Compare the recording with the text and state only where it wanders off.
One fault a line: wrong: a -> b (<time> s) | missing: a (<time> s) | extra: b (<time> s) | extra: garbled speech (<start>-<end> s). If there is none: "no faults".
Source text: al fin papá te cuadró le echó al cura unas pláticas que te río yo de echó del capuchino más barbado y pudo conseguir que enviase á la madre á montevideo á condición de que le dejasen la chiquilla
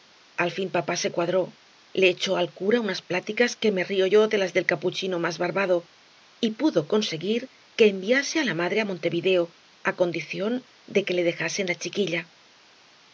wrong: te -> se (0.9 s)
wrong: te -> me (3.7 s)
wrong: echó -> las (4.4 s)